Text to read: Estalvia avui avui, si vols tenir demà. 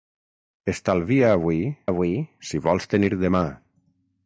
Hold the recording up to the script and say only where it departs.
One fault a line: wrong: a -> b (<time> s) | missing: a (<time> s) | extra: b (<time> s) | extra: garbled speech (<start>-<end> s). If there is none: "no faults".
no faults